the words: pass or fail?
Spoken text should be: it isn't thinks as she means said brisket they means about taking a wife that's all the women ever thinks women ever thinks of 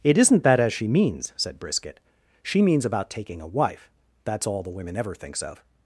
fail